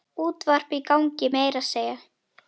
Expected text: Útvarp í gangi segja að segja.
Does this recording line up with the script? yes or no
no